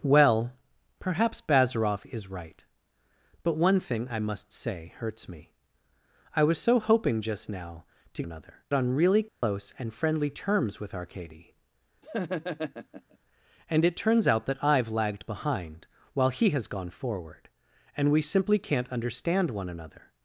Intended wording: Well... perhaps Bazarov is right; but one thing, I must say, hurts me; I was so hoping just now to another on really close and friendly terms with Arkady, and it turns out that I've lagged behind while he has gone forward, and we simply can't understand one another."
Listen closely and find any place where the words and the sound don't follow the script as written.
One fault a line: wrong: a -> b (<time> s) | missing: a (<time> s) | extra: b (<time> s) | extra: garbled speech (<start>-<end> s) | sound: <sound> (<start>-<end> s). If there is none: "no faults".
sound: dropout (9.3-9.4 s)
sound: laugh (12.0-13.2 s)